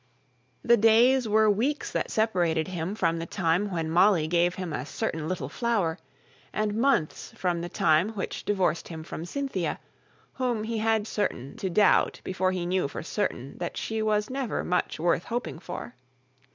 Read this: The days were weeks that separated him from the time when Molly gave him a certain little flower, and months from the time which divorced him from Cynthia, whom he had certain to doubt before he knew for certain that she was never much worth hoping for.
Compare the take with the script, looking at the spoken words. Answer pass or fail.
pass